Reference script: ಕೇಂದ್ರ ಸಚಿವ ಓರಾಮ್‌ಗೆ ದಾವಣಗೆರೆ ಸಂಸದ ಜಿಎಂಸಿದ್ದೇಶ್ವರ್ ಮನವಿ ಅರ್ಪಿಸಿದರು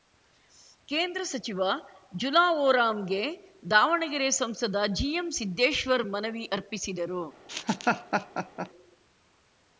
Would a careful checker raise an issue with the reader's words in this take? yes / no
yes